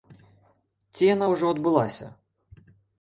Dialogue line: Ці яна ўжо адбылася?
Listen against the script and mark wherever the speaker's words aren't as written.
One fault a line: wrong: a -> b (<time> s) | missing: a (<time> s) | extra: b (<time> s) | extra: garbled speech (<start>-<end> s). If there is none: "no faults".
no faults